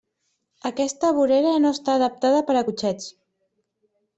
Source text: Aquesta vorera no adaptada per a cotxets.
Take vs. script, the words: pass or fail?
fail